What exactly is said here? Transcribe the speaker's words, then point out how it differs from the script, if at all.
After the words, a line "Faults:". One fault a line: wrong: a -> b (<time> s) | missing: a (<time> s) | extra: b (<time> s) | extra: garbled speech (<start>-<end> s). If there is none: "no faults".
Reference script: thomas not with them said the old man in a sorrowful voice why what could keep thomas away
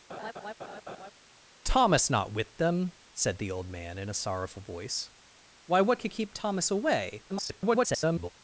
thomas not with them said the old man in a sorrowful voice why what could keep thomas away [garbled]
Faults:
extra: garbled speech (7.3-8.3 s)